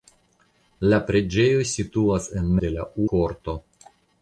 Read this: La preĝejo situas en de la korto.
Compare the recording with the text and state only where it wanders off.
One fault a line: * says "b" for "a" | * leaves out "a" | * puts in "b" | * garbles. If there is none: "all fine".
all fine